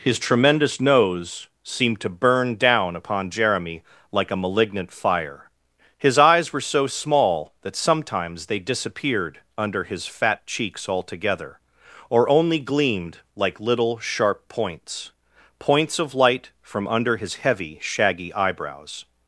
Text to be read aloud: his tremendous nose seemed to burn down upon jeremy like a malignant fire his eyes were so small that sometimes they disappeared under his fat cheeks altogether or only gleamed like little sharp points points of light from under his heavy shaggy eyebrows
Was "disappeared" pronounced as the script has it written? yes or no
yes